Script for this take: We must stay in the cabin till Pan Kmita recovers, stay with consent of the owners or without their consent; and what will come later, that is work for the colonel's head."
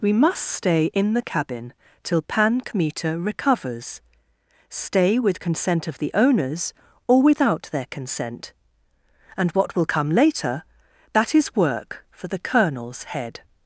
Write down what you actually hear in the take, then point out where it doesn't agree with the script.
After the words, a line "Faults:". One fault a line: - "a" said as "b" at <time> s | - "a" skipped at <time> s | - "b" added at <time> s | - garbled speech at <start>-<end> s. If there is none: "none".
We must stay in the cabin till Pan Kmita recovers, stay with consent of the owners or without their consent; and what will come later, that is work for the colonel's head."
Faults:
none